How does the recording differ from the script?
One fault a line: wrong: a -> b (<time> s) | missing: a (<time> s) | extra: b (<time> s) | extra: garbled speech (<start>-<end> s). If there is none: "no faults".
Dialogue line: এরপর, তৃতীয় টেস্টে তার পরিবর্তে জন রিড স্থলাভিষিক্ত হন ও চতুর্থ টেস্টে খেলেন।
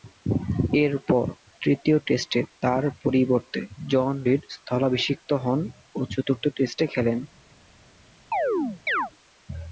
no faults